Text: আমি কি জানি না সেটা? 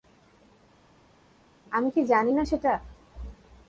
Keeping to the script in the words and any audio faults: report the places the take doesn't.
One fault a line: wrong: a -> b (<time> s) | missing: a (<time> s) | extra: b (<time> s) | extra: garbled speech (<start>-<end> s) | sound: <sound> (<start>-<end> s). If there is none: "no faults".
no faults